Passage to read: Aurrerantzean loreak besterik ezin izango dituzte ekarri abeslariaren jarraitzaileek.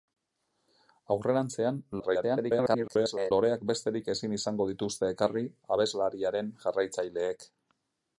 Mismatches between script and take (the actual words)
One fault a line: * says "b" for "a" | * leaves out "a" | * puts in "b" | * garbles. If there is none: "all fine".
* garbles